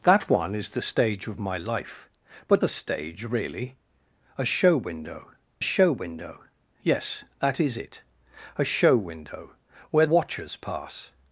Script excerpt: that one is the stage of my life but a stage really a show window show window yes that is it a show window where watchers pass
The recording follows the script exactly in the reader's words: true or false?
true